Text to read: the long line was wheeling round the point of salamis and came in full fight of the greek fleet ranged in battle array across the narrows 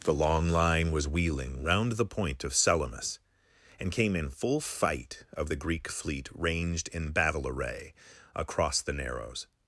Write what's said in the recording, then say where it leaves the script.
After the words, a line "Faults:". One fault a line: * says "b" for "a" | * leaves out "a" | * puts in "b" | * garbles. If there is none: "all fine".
the long line was wheeling round the point of salamis and came in full fight of the greek fleet ranged in battle array across the narrows
Faults:
all fine